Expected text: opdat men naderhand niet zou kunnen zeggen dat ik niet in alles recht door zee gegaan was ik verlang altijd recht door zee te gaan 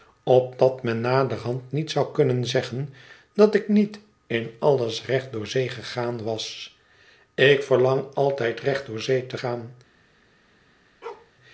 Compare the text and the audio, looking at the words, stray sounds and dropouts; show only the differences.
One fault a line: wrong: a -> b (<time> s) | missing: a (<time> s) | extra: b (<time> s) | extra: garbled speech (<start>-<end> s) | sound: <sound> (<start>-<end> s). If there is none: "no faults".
sound: bark (11.0-11.3 s)